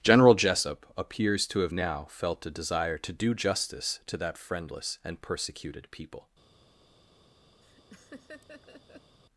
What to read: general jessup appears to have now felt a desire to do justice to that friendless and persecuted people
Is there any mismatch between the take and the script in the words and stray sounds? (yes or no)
yes